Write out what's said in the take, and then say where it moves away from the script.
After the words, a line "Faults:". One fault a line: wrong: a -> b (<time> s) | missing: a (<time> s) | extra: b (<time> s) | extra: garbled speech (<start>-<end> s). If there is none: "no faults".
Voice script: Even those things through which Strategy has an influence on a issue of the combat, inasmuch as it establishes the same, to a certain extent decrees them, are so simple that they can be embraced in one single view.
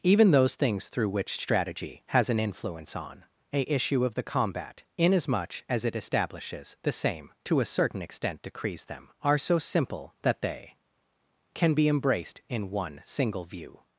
Even those things through which Strategy has an influence on a issue of the combat, inasmuch as it establishes the same, to a certain extent decrees them, are so simple that they can be embraced in one single view.
Faults:
no faults